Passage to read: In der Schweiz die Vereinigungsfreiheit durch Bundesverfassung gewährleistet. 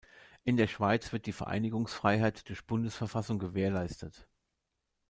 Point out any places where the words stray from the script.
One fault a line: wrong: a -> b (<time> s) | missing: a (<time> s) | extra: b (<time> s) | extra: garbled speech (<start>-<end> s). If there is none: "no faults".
extra: wird (1.1 s)